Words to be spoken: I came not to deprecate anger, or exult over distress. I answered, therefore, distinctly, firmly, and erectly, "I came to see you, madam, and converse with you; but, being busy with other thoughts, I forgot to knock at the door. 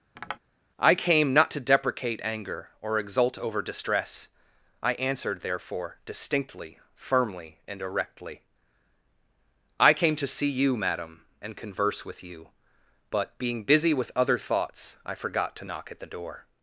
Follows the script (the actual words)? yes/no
yes